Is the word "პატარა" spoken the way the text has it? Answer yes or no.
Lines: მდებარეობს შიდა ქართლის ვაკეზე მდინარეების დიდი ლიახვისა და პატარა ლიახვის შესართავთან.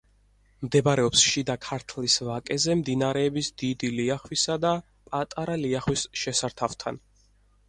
yes